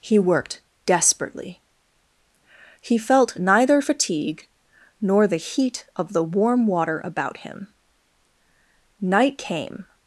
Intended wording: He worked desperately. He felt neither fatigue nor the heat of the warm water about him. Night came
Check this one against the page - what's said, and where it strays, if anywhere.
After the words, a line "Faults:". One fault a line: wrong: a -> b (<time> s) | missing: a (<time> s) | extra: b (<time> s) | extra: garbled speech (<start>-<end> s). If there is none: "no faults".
He worked desperately. He felt neither fatigue nor the heat of the warm water about him. Night came
Faults:
no faults